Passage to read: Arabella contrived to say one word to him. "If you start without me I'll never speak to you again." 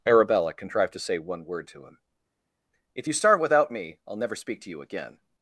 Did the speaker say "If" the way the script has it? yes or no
yes